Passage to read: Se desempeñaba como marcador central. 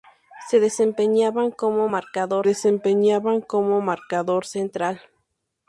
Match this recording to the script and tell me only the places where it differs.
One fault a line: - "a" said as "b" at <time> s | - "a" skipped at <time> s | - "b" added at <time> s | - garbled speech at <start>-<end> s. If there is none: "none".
- "desempeñaba como marcador" added at 2.4 s